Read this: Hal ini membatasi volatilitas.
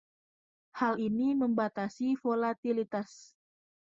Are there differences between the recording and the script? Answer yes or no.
no